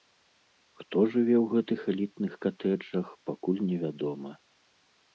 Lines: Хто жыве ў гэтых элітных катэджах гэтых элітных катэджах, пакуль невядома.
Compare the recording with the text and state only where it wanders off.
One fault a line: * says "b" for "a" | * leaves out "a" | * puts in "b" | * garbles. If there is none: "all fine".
* leaves out "гэтых элітных катэджах"